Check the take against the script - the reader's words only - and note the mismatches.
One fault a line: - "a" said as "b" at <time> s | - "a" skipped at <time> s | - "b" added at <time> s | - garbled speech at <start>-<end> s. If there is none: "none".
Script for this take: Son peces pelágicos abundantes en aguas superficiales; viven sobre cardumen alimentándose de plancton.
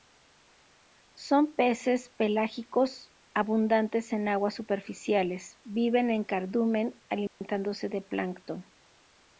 - "sobre" said as "en" at 6.1 s